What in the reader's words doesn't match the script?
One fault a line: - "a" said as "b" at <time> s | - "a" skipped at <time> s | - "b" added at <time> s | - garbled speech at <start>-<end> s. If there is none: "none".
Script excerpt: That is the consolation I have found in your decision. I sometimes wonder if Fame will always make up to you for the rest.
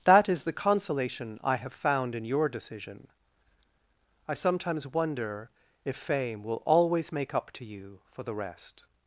none